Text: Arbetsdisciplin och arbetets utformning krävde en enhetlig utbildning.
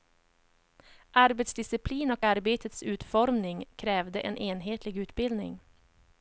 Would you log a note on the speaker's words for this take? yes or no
no